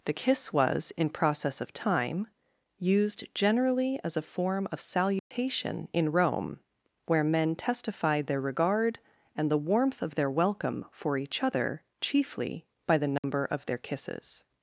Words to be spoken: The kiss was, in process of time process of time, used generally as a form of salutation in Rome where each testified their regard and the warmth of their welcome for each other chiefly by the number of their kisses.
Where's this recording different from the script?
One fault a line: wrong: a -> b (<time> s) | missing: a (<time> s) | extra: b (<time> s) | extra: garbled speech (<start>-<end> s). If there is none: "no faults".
missing: process of time (2.3 s)
wrong: each -> men (7.2 s)